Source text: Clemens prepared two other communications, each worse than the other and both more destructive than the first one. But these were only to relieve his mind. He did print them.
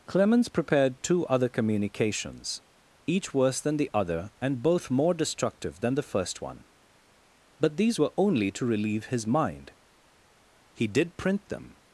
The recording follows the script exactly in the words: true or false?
true